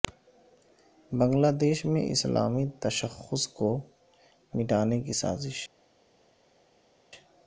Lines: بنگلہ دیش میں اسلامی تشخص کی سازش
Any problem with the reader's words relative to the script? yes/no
yes